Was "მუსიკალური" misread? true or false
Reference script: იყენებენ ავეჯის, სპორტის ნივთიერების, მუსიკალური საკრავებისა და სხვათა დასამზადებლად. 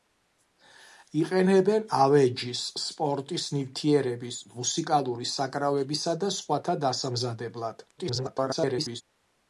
false